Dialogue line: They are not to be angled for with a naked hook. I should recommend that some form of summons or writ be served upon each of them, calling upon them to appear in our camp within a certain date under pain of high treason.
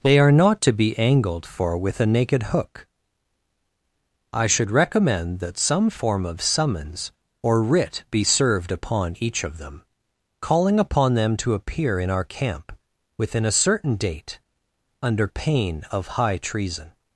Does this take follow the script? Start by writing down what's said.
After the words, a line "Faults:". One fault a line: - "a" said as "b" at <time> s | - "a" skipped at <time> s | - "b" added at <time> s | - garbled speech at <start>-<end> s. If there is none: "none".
They are not to be angled for with a naked hook. I should recommend that some form of summons or writ be served upon each of them, calling upon them to appear in our camp within a certain date under pain of high treason.
Faults:
none